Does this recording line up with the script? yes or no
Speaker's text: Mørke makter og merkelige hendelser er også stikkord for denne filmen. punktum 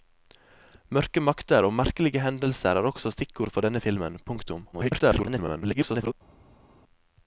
no